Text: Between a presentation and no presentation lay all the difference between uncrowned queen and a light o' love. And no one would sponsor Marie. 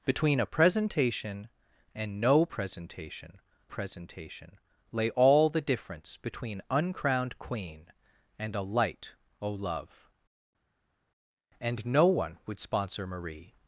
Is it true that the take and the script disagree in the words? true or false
true